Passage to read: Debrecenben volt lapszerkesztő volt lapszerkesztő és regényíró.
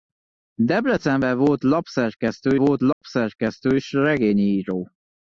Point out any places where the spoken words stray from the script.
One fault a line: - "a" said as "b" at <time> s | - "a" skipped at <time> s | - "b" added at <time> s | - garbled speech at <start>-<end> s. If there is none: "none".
none